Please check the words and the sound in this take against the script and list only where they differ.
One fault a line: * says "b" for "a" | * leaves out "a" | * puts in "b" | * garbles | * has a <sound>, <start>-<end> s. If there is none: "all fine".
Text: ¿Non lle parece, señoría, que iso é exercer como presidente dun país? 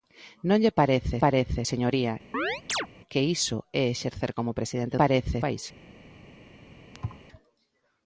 * puts in "parece"
* has a chirp, 2.3-2.9 s
* says "parece" for "dun"
* has a thud, 6.9-7.2 s